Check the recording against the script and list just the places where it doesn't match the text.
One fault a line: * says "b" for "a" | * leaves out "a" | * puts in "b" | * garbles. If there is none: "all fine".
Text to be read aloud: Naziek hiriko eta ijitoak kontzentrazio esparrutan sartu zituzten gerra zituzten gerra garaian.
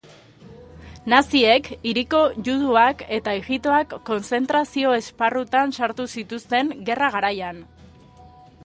* puts in "juduak"
* leaves out "zituzten gerra"